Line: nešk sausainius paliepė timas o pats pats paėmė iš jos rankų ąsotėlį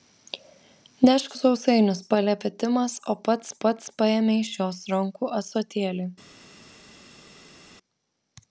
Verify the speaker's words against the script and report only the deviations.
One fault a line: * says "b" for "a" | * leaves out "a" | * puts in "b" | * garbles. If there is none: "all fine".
all fine